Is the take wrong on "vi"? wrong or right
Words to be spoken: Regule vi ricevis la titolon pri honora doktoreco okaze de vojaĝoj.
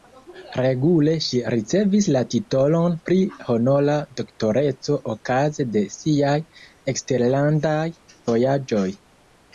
wrong